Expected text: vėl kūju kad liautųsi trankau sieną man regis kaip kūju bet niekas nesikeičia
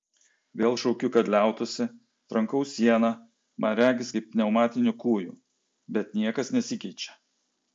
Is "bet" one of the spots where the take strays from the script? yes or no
no